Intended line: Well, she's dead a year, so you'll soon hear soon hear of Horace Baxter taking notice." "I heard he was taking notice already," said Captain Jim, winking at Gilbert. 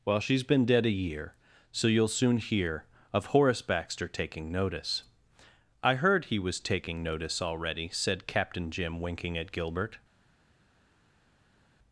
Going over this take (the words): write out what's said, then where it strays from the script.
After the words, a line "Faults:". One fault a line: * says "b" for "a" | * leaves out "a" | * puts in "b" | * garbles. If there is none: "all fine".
Well, she's been dead a year, so you'll soon hear of Horace Baxter taking notice." "I heard he was taking notice already," said Captain Jim, winking at Gilbert.
Faults:
* puts in "been"
* leaves out "soon hear"